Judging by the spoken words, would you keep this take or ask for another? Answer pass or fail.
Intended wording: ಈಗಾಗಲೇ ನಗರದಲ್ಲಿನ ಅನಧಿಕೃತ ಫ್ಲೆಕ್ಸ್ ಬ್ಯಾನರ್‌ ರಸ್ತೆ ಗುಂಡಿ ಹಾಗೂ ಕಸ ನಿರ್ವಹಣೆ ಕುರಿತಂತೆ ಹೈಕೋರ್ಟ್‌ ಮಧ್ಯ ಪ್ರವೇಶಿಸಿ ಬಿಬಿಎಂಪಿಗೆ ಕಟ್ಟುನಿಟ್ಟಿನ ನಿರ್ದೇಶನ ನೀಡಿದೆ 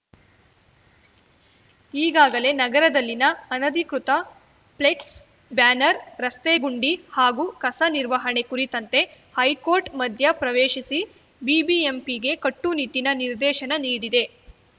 pass